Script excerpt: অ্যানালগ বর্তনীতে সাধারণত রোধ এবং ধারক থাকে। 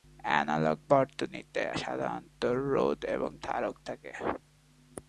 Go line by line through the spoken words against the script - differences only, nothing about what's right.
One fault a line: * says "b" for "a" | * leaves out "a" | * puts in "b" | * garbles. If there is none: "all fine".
all fine